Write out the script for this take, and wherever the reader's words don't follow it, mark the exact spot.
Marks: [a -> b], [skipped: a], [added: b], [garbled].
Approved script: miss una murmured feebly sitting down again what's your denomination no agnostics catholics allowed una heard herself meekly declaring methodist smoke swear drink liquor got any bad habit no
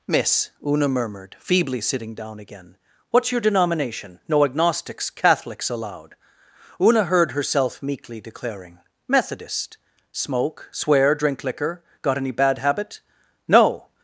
miss una murmured feebly sitting down again what's your denomination no agnostics catholics allowed una heard herself meekly declaring methodist smoke swear drink liquor got any bad habit no